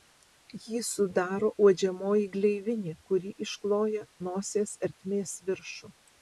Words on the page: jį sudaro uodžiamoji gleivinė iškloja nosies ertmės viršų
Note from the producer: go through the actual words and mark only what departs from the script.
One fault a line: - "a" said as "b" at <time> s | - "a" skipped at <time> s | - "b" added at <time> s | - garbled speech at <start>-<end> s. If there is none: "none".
- "kuri" added at 3.1 s